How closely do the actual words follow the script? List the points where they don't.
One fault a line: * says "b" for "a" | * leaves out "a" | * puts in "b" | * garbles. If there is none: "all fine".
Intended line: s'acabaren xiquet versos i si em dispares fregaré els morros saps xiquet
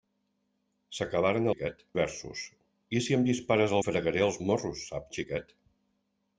all fine